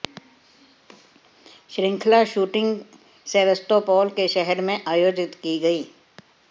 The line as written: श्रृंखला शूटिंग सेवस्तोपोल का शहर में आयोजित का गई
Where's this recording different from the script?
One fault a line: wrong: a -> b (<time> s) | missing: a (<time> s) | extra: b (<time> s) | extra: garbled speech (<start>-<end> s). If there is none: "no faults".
wrong: का -> के (4.2 s)
wrong: का -> की (5.4 s)